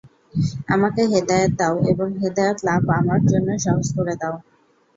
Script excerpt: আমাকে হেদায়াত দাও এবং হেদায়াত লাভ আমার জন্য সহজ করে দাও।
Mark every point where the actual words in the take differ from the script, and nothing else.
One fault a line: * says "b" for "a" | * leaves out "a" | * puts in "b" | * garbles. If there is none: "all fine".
all fine